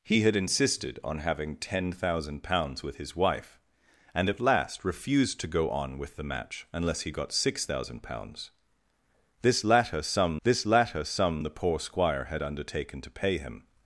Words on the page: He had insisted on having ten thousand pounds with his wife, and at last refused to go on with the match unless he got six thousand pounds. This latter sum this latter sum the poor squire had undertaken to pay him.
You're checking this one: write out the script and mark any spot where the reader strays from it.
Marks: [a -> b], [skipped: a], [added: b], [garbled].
He had insisted on having ten thousand pounds with his wife, and at last refused to go on with the match unless he got six thousand pounds. This latter sum this latter sum the poor squire had undertaken to pay him.